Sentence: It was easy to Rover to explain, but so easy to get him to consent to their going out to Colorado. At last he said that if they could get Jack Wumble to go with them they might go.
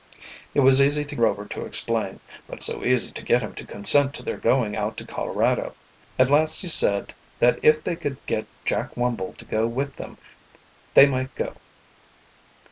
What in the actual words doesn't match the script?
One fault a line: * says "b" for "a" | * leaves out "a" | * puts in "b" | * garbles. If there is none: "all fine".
all fine